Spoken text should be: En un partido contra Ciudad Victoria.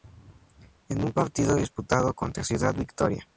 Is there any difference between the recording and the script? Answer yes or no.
yes